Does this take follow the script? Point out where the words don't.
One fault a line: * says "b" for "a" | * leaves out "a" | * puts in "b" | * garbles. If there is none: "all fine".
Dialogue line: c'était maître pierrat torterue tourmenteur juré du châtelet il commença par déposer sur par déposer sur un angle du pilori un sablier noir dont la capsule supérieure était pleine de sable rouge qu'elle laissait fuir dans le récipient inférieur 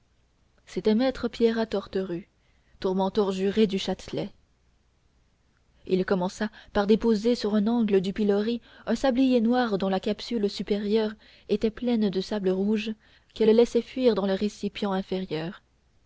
* leaves out "par déposer sur"